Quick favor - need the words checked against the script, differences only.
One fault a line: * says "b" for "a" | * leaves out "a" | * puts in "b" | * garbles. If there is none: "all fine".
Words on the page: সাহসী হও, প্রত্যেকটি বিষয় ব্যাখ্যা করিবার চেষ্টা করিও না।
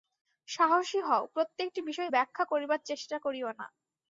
all fine